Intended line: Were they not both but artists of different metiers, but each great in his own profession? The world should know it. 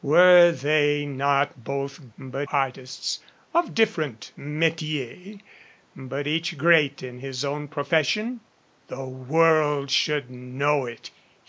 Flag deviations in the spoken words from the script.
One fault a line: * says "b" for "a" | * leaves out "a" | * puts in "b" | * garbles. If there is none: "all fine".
all fine